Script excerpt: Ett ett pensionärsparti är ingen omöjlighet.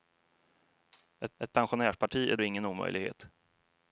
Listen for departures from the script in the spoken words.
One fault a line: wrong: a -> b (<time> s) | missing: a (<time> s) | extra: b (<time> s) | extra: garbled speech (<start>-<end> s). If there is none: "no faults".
no faults